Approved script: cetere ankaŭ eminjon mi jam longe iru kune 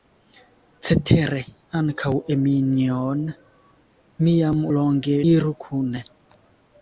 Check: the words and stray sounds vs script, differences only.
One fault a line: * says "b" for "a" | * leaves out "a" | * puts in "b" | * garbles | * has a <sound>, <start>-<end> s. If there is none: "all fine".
all fine